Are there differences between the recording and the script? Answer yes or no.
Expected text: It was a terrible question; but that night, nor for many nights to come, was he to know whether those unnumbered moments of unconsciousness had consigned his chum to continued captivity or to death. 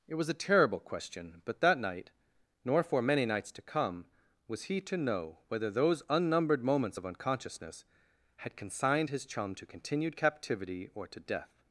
no